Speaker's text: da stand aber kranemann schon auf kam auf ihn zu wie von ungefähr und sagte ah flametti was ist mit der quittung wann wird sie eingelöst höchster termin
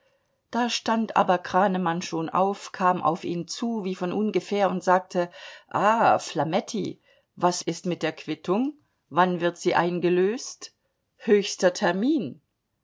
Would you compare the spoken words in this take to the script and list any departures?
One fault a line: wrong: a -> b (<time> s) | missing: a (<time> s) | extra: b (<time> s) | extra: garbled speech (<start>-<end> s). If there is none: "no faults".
no faults